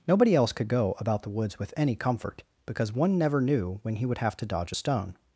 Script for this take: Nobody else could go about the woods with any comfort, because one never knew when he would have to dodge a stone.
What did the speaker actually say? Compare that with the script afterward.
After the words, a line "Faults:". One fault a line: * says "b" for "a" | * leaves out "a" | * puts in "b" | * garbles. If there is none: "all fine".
Nobody else could go about the woods with any comfort, because one never knew when he would have to dodge a stone.
Faults:
all fine